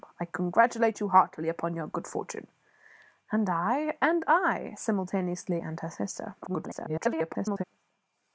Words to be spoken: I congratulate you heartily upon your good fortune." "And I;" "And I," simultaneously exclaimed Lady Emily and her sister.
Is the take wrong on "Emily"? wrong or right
wrong